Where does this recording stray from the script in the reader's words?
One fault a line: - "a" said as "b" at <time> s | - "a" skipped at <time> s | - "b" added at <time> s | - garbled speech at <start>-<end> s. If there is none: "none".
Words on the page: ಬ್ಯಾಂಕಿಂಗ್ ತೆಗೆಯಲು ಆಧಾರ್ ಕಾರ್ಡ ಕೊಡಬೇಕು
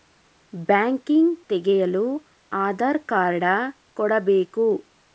none